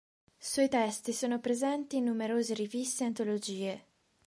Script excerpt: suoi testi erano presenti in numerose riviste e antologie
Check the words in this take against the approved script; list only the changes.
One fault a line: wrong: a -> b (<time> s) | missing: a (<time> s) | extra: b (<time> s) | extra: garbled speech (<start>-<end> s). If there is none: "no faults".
wrong: erano -> sono (1.1 s)